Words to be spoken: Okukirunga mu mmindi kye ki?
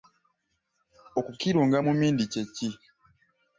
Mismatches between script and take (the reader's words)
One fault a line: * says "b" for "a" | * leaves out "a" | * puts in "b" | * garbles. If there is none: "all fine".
all fine